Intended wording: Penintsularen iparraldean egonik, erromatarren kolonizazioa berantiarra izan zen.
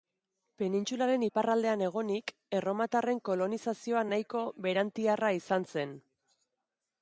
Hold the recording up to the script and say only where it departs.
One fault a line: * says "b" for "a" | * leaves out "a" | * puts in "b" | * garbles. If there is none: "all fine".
* puts in "nahiko"